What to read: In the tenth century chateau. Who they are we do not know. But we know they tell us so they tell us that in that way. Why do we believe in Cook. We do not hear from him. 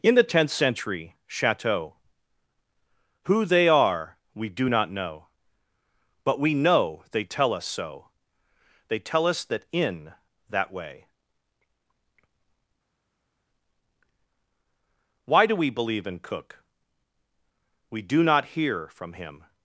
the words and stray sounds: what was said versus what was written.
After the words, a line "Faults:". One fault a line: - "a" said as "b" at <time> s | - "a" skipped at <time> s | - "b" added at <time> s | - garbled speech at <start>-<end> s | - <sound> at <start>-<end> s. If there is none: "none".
In the tenth century chateau. Who they are we do not know. But we know they tell us so they tell us that in that way. Why do we believe in Cook. We do not hear from him.
Faults:
none